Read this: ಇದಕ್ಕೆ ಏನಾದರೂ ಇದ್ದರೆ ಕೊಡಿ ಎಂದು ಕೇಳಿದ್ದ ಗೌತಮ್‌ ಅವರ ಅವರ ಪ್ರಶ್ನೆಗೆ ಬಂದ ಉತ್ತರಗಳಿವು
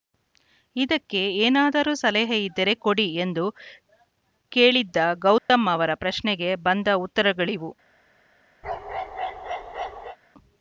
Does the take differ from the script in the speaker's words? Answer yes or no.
yes